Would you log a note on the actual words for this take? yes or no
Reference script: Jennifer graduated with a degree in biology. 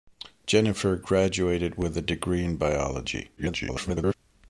yes